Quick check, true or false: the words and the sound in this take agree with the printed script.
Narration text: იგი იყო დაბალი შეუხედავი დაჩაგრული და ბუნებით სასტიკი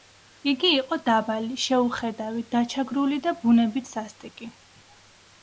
true